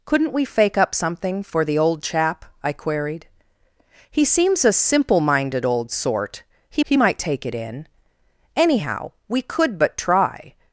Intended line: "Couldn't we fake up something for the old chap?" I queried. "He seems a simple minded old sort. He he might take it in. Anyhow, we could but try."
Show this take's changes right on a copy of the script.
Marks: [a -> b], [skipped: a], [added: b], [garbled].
"Couldn't we fake up something for the old chap?" I queried. "He seems a simple minded old sort. He he might take it in. Anyhow, we could but try."